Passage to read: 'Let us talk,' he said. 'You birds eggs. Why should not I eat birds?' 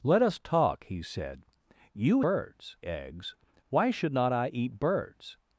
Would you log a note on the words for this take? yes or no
no